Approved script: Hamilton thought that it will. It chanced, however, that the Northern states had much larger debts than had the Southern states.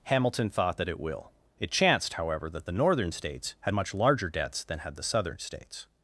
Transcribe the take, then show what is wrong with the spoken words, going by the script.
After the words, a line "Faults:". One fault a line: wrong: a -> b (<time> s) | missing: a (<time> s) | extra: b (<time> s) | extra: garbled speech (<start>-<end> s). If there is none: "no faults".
Hamilton thought that it will. It chanced, however, that the Northern states had much larger debts than had the Southern states.
Faults:
no faults